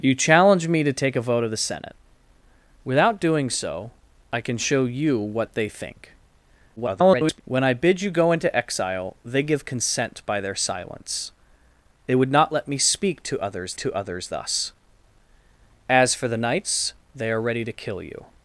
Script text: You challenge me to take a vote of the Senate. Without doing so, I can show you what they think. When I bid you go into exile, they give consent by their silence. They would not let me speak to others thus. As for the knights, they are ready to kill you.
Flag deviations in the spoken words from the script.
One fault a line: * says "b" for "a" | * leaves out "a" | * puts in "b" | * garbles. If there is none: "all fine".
* garbles
* puts in "to others"